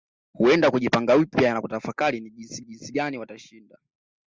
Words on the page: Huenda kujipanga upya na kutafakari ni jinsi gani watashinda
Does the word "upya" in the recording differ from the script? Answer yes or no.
no